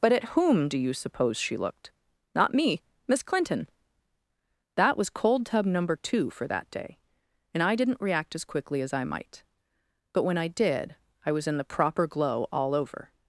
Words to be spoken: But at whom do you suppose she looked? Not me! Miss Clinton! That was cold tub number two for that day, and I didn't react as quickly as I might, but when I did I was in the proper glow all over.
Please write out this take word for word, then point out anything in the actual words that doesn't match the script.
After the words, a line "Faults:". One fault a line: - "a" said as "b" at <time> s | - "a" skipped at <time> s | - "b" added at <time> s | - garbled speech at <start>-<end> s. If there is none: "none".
But at whom do you suppose she looked? Not me! Miss Clinton! That was cold tub number two for that day, and I didn't react as quickly as I might, but when I did I was in the proper glow all over.
Faults:
none